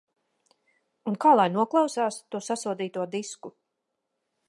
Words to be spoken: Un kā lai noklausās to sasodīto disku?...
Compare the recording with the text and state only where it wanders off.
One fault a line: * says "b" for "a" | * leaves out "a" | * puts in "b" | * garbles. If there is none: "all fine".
all fine